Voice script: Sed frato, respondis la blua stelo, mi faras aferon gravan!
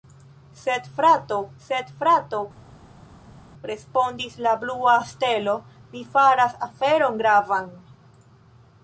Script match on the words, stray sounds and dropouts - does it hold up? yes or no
no